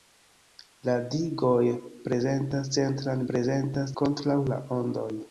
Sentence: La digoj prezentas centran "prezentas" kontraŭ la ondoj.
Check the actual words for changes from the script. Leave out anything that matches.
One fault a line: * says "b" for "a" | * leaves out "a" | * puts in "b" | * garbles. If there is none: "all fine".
all fine